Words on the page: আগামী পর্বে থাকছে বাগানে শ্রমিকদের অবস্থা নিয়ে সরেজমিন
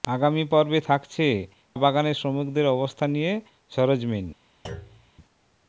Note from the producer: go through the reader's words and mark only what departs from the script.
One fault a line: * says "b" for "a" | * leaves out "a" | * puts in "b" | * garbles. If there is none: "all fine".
all fine